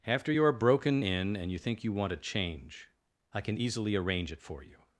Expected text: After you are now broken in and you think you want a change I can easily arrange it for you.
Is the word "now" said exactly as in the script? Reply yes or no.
no